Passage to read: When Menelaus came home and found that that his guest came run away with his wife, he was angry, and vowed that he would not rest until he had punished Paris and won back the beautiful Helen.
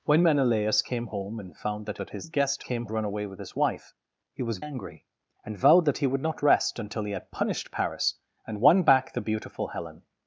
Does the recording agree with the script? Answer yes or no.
yes